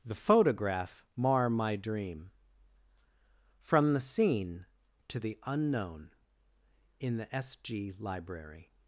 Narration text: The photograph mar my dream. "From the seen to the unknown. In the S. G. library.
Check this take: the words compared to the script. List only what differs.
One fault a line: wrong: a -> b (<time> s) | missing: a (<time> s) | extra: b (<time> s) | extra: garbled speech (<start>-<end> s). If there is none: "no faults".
no faults